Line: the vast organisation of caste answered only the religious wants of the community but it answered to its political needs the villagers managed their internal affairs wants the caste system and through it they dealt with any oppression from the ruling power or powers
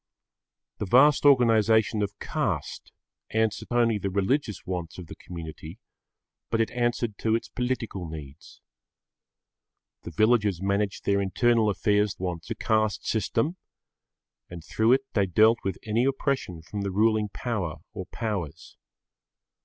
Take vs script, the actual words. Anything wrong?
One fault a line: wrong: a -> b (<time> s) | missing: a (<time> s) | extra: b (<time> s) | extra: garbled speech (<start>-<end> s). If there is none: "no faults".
no faults